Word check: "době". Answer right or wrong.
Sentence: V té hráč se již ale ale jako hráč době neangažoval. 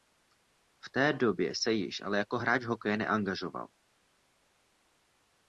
wrong